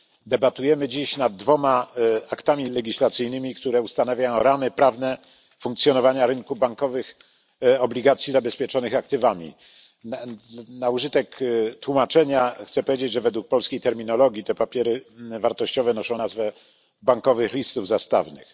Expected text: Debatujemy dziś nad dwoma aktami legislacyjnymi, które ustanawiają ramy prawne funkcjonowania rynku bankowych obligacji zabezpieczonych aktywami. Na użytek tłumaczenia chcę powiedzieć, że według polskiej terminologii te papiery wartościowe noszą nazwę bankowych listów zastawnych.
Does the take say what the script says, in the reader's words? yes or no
yes